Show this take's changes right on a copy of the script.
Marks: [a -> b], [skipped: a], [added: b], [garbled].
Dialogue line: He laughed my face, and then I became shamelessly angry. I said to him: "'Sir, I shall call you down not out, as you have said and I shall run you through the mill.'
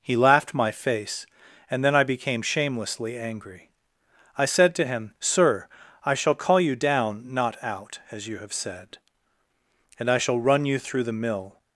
He laughed my face, and then I became shamelessly angry. I said to him: "'Sir, I shall call you down not out, as you have said and I shall run you through the mill.'